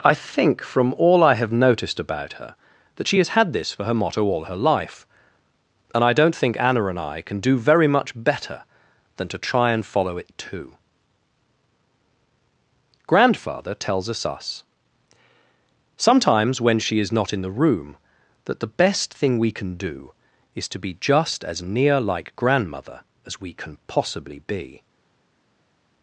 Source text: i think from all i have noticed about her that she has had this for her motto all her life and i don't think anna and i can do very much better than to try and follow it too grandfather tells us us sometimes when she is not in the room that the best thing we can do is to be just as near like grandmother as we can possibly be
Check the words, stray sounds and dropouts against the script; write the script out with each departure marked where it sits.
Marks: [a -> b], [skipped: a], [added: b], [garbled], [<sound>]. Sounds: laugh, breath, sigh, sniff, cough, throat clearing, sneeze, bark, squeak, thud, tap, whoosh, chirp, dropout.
i think from all i have noticed about her that she has had this for her motto all her life and i don't think anna and i can do very much better than to try and follow it too grandfather tells us us sometimes when she is not in the room that the best thing we can do is to be just as near like grandmother as we can possibly be